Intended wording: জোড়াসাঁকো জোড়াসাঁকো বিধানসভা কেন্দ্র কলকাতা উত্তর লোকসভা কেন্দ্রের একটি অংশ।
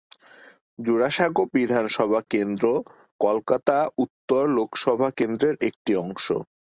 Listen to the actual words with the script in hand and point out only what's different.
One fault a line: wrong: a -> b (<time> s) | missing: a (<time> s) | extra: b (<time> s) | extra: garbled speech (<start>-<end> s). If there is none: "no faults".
missing: জোড়াসাঁকো (1.4 s)